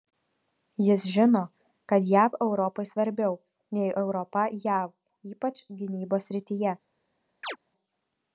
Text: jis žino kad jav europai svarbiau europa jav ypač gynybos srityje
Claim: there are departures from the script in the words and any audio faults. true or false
true